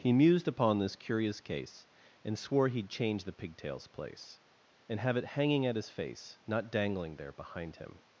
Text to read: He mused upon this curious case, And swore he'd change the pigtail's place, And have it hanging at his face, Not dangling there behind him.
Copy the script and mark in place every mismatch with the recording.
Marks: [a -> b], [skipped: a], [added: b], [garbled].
He mused upon this curious case, And swore he'd change the pigtail's place, And have it hanging at his face, Not dangling there behind him.